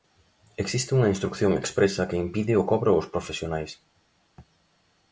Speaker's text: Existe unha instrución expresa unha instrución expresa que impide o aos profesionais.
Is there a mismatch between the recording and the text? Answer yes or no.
yes